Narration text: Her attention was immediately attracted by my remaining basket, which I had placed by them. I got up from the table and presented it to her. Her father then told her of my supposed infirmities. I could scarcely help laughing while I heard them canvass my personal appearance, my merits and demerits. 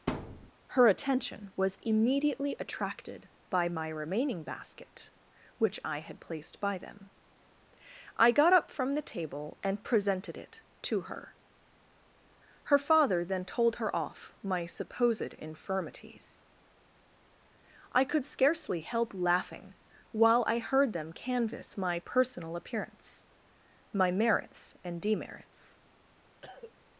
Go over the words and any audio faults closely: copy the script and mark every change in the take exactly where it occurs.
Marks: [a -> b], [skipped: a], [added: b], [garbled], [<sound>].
[thud] Her attention was immediately attracted by my remaining basket, which I had placed by them. I got up from the table and presented it to her. Her father then told her [of -> off] my supposed infirmities. I could scarcely help laughing while I heard them canvass my personal appearance, my merits and demerits. [cough]